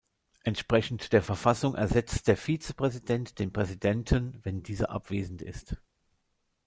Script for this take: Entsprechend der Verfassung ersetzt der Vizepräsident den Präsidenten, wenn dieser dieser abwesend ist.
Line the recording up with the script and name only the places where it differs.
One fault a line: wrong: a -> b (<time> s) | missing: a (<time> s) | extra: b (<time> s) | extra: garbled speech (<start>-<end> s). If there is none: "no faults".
missing: dieser (4.9 s)